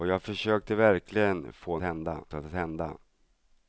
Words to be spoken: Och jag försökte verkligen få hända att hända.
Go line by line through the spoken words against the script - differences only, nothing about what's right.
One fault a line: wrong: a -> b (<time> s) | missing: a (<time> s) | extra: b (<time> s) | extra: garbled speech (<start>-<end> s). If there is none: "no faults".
no faults